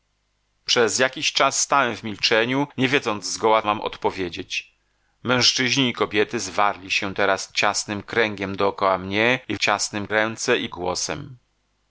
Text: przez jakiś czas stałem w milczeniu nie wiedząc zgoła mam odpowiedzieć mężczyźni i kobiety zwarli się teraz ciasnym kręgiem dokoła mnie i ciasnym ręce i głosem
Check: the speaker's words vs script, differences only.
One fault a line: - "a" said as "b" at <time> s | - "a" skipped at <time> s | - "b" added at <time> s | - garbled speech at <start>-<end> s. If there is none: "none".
none